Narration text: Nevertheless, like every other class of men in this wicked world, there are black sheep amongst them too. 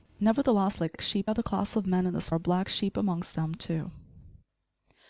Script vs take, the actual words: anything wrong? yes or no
yes